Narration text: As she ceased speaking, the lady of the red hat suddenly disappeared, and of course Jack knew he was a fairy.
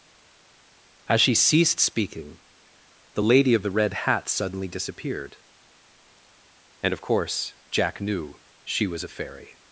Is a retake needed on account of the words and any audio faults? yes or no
yes